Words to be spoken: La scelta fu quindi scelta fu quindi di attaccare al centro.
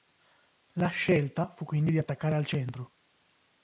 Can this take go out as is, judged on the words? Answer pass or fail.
fail